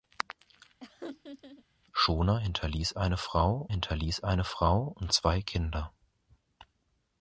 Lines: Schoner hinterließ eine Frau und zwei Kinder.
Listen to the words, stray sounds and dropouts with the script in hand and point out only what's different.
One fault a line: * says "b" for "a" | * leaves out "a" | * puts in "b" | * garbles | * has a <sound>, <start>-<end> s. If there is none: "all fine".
* has a laugh, 0.8-1.7 s
* puts in "hinterließ eine Frau"